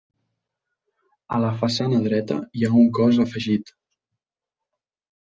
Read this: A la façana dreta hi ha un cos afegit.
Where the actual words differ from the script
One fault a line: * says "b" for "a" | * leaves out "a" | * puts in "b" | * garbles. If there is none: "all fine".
all fine